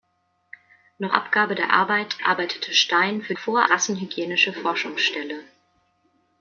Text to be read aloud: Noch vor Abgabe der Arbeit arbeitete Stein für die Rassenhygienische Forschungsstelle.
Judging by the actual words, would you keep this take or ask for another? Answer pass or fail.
fail